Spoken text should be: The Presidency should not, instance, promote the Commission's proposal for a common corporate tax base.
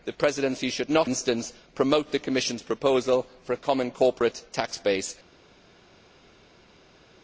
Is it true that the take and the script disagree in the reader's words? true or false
false